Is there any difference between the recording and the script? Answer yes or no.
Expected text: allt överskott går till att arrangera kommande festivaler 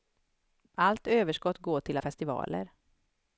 yes